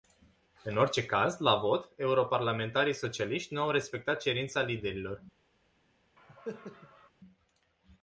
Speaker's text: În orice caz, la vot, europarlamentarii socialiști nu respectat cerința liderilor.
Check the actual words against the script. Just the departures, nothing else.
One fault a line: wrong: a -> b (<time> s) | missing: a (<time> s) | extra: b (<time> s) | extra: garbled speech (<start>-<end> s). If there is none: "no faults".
extra: au (3.6 s)